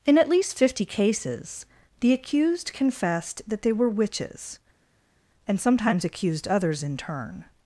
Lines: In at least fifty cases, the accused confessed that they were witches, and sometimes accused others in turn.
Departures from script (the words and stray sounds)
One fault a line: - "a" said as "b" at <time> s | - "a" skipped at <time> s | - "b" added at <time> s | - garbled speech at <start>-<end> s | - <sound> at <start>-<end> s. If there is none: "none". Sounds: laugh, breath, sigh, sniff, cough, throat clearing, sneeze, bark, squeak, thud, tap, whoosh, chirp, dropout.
none